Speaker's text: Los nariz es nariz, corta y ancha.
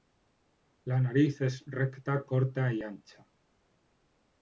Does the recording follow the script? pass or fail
fail